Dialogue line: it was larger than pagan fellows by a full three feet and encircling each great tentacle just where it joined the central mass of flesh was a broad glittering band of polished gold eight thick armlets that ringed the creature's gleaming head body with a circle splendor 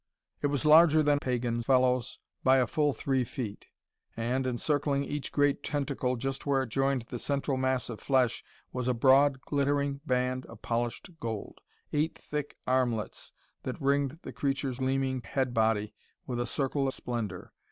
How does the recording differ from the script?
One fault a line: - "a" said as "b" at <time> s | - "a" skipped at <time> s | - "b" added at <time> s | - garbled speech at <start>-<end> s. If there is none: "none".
none